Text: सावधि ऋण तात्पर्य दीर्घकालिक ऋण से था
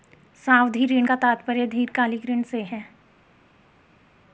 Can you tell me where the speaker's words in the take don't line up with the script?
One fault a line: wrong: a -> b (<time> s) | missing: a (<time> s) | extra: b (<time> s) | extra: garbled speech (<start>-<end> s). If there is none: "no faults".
extra: का (1.0 s)
wrong: था -> है (2.6 s)